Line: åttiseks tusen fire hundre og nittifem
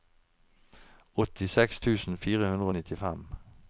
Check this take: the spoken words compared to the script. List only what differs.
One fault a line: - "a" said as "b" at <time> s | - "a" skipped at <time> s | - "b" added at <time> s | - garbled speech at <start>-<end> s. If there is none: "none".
none